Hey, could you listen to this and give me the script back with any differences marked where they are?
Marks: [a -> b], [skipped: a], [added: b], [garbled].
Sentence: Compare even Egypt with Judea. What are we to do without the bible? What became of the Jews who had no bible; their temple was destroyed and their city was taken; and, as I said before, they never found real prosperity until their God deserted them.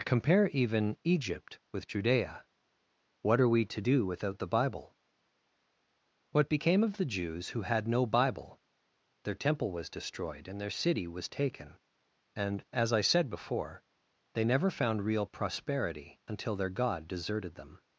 Compare even Egypt with Judea. What are we to do without the bible? What became of the Jews who had no bible; their temple was destroyed and their city was taken; and, as I said before, they never found real prosperity until their God deserted them.